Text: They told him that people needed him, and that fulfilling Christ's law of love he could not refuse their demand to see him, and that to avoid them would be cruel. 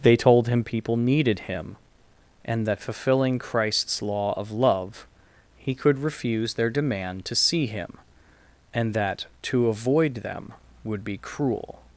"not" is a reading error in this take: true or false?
true